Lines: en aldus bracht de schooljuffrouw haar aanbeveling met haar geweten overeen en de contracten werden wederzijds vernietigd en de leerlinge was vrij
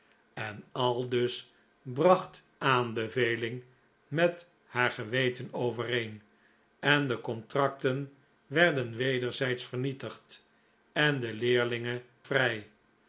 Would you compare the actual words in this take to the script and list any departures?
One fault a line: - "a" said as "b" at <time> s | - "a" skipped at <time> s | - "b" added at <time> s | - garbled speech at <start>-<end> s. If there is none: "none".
- "de schooljuffrouw haar" skipped at 2.5 s
- "was" skipped at 12.0 s